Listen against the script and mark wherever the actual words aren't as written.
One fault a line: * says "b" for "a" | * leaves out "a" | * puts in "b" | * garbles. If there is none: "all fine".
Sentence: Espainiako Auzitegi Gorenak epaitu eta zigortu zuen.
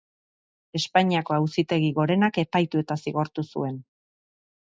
all fine